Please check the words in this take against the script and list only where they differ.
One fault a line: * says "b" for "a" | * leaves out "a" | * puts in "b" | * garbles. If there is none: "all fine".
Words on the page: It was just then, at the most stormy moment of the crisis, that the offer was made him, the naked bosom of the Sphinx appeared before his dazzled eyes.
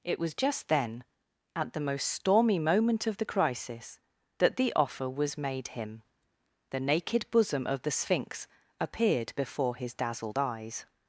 all fine